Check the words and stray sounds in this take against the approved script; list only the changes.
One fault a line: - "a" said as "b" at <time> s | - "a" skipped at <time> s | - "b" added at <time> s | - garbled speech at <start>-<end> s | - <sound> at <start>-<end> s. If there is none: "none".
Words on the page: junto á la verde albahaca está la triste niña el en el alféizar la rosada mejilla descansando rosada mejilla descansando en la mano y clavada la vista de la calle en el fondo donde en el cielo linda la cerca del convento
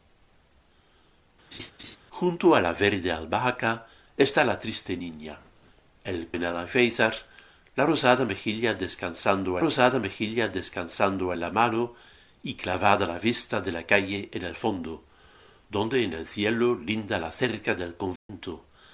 - laugh at 1.5-2.0 s
- dropout at 18.2-18.3 s